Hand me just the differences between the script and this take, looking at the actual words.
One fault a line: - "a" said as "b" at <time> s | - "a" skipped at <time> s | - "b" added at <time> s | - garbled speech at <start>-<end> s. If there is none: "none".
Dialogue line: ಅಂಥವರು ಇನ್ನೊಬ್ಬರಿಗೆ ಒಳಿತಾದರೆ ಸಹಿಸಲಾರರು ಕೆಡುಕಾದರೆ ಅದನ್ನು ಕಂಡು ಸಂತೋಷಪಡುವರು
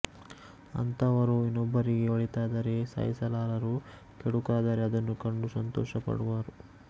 none